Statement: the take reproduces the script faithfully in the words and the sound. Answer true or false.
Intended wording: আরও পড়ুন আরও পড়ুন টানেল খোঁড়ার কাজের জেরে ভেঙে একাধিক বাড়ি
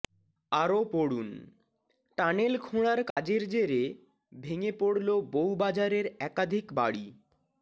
false